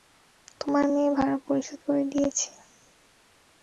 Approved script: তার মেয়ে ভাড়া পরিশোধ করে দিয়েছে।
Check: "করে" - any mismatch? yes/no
no